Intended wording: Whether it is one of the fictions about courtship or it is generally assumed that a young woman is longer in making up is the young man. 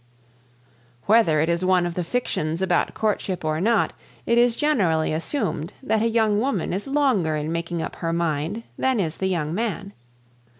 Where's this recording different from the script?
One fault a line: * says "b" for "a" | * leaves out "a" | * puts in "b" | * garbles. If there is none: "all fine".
* puts in "not"
* puts in "her mind than"